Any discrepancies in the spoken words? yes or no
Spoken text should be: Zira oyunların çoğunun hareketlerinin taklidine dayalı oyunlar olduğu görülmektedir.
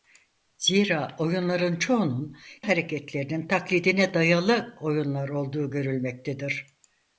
no